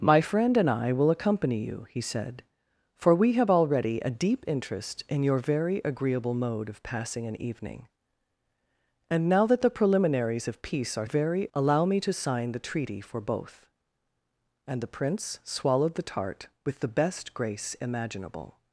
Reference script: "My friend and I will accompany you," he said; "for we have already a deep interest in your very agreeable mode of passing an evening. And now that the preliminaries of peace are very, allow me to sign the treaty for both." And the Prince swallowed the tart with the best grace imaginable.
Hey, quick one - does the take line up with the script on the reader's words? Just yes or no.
yes